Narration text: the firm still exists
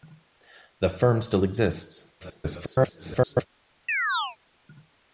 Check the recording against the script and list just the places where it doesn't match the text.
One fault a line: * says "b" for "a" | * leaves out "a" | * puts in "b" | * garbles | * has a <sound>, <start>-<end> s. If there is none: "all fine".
* garbles
* has a chirp, 3.9-4.4 s